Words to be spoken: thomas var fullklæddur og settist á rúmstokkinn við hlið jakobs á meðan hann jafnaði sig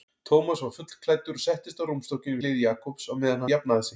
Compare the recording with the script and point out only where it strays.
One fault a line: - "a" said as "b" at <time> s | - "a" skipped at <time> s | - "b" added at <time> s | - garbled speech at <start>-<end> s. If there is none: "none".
- "við" skipped at 2.4 s
- "hann" skipped at 3.5 s